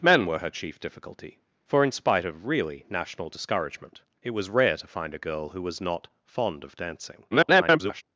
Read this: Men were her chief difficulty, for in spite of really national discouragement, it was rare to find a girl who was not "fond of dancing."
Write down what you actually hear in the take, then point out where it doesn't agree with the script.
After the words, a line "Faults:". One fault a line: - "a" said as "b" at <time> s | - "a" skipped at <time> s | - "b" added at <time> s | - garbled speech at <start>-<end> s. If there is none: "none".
Men were her chief difficulty, for in spite of really national discouragement, it was rare to find a girl who was not "fond of dancing." [garbled]
Faults:
- garbled speech at 7.3-8.0 s